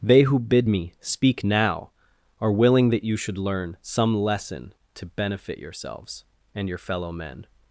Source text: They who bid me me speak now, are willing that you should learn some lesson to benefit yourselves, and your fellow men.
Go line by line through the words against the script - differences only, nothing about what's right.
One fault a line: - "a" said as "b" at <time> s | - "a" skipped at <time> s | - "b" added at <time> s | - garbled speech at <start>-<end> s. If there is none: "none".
- "me" skipped at 0.9 s